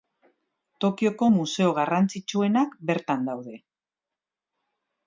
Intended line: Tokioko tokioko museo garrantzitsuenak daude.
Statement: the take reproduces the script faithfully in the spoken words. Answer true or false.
false